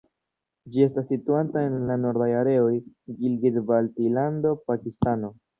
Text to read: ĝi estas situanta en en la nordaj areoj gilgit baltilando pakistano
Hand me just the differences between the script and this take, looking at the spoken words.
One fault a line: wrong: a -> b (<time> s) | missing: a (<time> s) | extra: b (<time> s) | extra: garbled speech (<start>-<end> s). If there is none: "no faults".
no faults